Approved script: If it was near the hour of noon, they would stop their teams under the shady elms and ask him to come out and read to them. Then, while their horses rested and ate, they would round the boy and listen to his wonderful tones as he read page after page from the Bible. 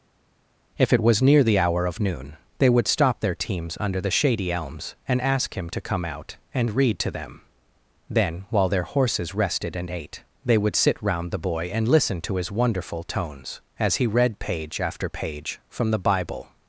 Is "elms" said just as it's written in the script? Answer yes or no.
yes